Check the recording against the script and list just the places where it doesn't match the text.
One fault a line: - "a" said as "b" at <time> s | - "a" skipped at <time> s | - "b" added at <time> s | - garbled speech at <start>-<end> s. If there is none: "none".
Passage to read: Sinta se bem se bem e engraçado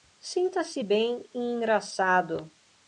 - "se bem" skipped at 1.3 s